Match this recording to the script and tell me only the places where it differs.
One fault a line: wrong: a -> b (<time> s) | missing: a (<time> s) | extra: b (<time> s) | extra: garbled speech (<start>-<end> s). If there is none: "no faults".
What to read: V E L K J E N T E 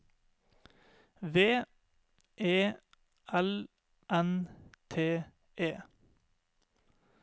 missing: K J E (3.7 s)